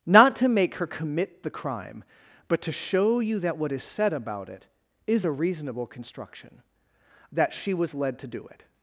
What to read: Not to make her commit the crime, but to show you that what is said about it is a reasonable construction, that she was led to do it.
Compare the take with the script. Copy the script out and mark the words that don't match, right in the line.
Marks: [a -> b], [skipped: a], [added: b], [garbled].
Not to make her commit the crime, but to show you that what is said about it is a reasonable construction, that she was led to do it.